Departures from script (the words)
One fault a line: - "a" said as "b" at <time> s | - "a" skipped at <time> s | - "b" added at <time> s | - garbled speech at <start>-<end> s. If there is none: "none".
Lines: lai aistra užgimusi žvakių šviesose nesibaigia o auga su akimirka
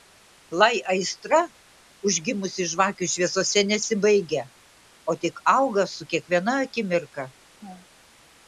- "tik" added at 5.3 s
- "kiekviena" added at 6.2 s